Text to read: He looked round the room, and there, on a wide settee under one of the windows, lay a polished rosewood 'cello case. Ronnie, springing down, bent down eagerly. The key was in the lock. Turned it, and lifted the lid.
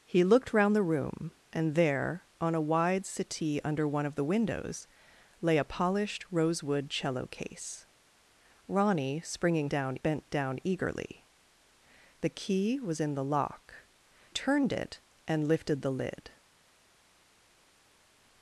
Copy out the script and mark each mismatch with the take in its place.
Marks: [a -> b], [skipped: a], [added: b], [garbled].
He looked round the room, and there, on a wide settee under one of the windows, lay a polished rosewood 'cello case. Ronnie, springing down, bent down eagerly. The key was in the lock. Turned it, and lifted the lid.